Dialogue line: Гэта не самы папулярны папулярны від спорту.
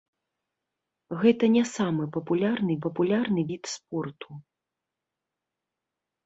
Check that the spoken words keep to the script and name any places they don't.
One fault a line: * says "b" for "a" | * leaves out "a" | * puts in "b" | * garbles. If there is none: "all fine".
all fine